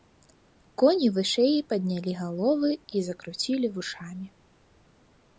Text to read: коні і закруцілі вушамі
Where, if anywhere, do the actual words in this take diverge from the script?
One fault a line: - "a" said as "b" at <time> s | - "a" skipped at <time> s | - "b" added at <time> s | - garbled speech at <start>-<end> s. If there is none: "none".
- "вышэй паднялі галовы" added at 1.2 s